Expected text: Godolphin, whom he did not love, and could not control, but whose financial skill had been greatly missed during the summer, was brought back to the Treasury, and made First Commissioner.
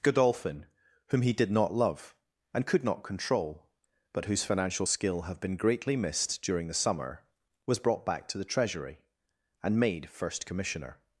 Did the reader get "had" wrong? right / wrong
wrong